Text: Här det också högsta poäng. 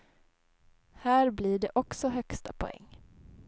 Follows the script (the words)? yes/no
no